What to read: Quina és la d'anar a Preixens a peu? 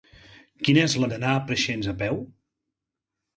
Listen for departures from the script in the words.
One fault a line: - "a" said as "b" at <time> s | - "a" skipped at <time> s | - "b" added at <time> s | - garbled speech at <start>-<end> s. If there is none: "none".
none